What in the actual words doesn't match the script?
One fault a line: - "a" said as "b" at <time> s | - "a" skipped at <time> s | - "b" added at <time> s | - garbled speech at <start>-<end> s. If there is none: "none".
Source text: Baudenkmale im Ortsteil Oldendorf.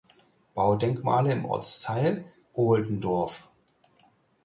none